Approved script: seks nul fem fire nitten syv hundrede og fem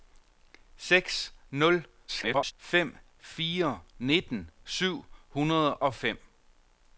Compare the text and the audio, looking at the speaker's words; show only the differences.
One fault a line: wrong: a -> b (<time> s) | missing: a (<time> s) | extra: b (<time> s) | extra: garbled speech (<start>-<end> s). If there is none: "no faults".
extra: garbled speech (2.1-2.5 s)